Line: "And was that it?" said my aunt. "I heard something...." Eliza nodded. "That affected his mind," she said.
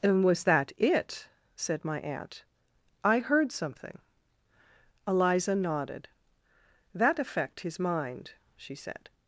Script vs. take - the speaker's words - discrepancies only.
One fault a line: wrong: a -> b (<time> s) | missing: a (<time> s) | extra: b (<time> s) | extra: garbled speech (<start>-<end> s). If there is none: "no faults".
wrong: affected -> affect (7.2 s)